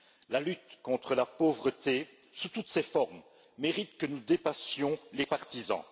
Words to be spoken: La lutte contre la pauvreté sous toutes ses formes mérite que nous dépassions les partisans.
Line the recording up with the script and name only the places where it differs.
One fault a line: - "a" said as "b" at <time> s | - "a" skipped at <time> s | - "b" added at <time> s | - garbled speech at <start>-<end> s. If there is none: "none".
none